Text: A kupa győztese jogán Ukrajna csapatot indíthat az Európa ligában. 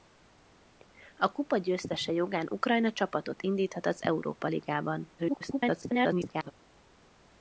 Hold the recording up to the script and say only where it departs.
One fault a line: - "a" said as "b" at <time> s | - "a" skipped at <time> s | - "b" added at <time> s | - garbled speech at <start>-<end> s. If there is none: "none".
- garbled speech at 5.2-6.5 s